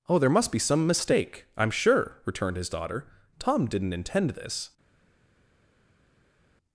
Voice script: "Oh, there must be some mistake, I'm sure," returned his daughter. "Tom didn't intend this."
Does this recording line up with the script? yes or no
yes